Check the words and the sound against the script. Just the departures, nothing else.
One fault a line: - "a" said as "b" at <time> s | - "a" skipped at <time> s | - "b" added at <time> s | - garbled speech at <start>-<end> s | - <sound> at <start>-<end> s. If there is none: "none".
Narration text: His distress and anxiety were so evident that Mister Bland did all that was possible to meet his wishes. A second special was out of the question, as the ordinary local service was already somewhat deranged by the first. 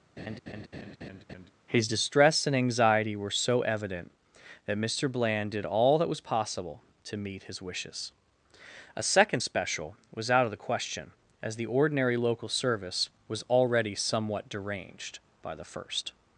- laugh at 0.2-1.5 s